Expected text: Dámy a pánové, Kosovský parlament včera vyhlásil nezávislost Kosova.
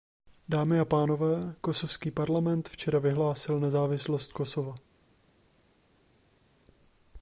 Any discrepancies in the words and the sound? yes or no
no